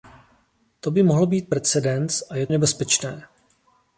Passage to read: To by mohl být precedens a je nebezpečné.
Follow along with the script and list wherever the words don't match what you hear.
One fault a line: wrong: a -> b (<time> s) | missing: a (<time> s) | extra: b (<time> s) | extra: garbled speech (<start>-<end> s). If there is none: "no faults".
no faults